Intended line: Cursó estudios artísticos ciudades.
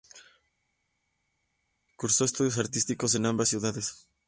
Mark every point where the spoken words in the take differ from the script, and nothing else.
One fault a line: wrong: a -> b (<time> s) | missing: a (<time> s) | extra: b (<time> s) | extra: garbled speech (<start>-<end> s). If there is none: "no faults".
extra: en ambas (3.1 s)